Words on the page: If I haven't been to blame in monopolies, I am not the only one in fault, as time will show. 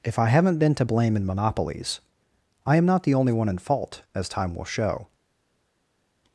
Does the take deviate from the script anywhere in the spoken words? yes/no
no